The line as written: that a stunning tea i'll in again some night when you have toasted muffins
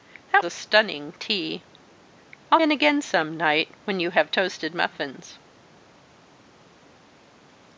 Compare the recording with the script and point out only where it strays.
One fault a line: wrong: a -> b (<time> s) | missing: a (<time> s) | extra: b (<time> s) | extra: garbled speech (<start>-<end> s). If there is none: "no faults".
no faults